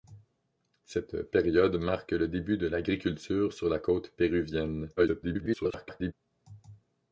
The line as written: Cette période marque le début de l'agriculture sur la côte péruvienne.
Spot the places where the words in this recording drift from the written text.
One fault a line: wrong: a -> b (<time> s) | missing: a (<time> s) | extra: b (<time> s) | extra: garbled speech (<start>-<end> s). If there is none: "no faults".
extra: garbled speech (5.0-6.1 s)